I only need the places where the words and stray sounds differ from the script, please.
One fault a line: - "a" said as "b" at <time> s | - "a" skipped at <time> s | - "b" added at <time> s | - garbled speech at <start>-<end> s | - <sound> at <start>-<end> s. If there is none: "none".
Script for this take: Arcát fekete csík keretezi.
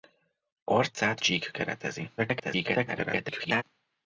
- "fekete" skipped at 1.2 s
- garbled speech at 2.2-3.6 s